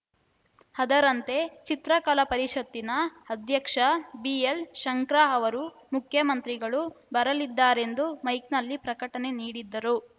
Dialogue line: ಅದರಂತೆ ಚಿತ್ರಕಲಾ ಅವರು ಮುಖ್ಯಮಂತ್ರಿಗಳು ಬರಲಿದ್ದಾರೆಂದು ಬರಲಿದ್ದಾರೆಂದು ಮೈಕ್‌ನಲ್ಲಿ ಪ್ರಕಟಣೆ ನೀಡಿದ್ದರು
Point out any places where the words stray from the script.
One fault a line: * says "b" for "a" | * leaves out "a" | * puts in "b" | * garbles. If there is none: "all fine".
* puts in "ಪರಿಷತ್ತಿನ ಅಧ್ಯಕ್ಷ ಬಿಎಲ್‌ಶಂಕರಾ"
* leaves out "ಬರಲಿದ್ದಾರೆಂದು"